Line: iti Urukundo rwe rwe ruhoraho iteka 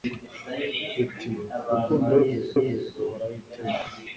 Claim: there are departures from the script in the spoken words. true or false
false